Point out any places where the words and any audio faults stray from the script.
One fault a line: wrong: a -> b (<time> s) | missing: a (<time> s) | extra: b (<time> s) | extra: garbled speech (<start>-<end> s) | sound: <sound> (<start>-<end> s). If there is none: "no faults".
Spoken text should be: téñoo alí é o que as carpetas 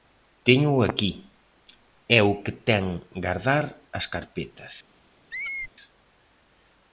wrong: alí -> aquí (0.9 s)
extra: ten gardar (2.7 s)
sound: squeak (5.3-5.7 s)